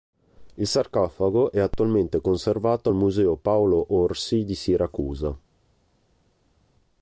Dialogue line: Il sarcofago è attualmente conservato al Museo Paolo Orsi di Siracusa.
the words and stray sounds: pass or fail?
pass